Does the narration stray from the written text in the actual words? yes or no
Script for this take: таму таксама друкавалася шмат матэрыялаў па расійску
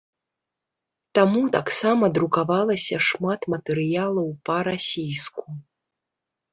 no